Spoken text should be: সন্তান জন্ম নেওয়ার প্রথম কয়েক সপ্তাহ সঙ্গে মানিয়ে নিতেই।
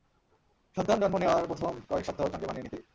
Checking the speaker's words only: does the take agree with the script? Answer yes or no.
yes